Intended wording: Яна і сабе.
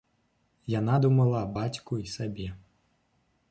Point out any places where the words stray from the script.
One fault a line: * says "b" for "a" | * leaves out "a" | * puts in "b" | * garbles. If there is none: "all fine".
* puts in "думала аб бацьку"